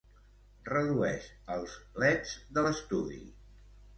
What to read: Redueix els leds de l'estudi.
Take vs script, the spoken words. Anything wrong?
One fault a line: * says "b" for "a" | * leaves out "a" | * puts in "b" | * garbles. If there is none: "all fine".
all fine